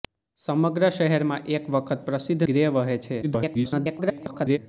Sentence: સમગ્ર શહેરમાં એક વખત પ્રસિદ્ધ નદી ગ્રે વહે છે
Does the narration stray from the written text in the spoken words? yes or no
yes